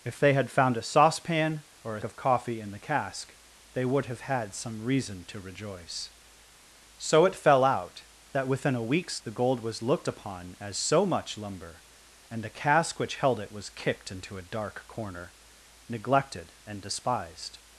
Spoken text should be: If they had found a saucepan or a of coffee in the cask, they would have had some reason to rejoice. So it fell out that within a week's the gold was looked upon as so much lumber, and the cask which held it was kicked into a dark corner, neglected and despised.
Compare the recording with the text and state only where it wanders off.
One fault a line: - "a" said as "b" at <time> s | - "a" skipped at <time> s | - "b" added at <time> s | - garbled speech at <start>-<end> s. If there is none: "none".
none